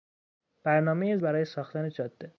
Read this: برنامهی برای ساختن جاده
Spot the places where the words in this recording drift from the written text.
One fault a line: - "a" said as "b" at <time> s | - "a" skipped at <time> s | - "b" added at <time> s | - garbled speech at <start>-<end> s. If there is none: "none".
none